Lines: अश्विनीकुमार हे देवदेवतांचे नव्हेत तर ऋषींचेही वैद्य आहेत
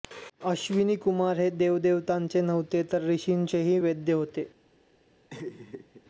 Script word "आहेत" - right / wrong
wrong